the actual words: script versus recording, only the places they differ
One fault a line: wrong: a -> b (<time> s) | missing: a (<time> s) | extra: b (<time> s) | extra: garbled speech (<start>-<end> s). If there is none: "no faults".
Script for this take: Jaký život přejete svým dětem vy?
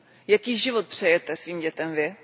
no faults